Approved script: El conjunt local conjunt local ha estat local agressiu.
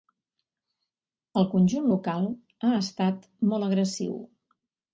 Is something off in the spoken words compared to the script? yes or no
yes